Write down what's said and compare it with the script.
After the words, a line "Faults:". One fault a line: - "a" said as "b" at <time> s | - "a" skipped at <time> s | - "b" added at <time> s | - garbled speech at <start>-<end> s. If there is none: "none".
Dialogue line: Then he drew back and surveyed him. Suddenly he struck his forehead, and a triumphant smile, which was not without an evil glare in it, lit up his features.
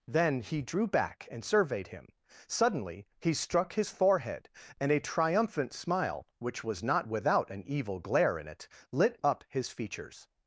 Then he drew back and surveyed him. Suddenly he struck his forehead, and a triumphant smile, which was not without an evil glare in it, lit up his features.
Faults:
none